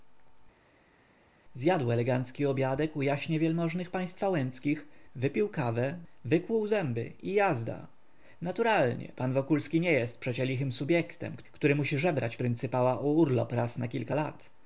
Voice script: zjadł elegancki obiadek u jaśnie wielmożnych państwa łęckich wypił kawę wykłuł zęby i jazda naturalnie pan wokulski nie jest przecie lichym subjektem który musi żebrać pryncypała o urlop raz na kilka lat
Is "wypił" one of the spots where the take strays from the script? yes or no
no